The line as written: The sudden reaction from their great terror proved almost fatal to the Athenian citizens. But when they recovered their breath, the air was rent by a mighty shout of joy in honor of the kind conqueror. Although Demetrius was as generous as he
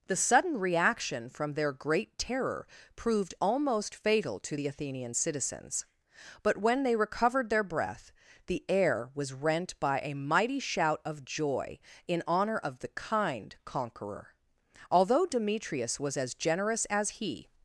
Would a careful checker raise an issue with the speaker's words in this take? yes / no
no